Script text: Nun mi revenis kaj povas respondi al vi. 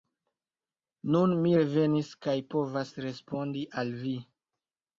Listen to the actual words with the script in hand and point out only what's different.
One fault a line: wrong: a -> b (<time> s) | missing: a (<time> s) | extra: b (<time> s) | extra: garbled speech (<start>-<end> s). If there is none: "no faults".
no faults